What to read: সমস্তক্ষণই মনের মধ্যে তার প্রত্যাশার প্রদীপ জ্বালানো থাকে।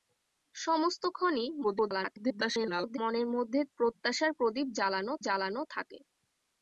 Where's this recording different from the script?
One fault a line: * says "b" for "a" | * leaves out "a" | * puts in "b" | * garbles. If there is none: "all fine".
* garbles
* leaves out "তার"
* puts in "জ্বালানো"